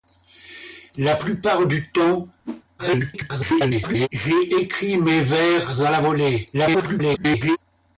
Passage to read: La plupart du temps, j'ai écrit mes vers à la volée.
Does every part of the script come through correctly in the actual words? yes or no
no